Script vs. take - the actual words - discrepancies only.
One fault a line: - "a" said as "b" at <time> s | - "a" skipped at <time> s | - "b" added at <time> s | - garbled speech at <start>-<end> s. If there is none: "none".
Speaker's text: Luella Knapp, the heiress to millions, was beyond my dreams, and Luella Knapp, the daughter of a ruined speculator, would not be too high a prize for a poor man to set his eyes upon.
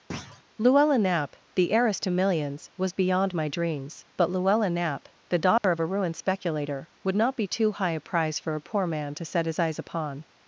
- "and" said as "but" at 4.2 s